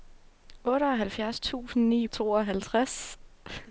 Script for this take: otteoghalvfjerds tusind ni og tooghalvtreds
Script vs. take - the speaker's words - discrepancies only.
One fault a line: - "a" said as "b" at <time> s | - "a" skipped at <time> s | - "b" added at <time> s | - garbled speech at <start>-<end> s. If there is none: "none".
none